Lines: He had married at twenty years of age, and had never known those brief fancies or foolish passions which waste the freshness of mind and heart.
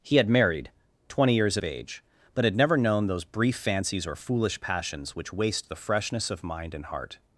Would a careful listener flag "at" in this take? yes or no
yes